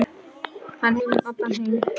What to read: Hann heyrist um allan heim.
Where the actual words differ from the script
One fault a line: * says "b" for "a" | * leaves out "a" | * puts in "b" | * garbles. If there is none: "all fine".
* leaves out "heyrist"